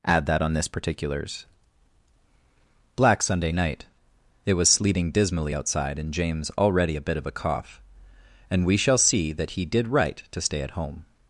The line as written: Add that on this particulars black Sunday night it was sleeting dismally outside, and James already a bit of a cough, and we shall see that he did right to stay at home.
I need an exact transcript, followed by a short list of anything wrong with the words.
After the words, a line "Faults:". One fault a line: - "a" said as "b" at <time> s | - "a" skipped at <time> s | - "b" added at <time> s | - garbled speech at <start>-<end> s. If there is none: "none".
Add that on this particulars black Sunday night it was sleeting dismally outside, and James already a bit of a cough, and we shall see that he did right to stay at home.
Faults:
none